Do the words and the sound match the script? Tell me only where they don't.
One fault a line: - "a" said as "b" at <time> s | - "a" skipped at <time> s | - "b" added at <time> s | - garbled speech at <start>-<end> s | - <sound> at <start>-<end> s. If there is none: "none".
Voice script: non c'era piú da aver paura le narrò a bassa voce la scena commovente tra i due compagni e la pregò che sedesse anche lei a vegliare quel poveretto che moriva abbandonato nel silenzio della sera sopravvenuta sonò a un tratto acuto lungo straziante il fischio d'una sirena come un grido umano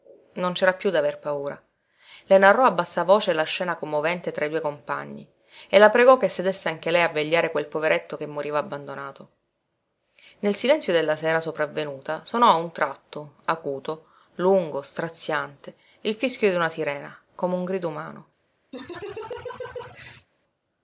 - laugh at 18.7-20.3 s